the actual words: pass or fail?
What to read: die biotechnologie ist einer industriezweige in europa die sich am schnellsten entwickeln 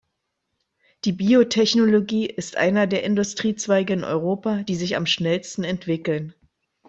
fail